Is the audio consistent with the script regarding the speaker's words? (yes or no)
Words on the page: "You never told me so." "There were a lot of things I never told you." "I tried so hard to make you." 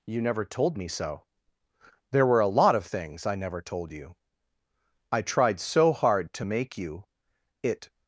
no